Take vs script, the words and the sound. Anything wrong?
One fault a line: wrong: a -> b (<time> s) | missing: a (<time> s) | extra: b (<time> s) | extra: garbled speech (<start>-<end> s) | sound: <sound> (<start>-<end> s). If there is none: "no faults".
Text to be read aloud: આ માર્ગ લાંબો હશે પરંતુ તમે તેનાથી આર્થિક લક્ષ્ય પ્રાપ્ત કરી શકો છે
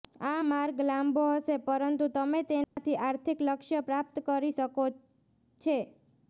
sound: dropout (2.6-2.8 s)